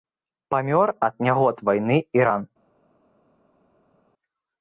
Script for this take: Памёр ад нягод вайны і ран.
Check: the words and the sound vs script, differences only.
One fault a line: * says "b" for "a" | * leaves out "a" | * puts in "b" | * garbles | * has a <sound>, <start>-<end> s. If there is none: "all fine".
all fine